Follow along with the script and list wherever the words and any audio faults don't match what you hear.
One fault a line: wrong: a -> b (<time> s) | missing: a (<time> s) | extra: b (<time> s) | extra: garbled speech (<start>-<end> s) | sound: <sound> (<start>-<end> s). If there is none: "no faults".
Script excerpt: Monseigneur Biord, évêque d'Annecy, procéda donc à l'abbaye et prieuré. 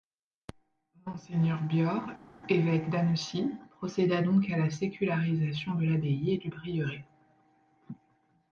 extra: la sécularisation de (4.6 s)
extra: du (6.4 s)